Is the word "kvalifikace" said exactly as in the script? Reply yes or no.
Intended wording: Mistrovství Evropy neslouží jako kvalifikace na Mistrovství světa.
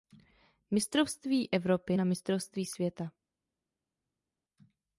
no